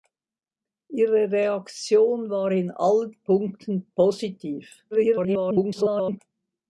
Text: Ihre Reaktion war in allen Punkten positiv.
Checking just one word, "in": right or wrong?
right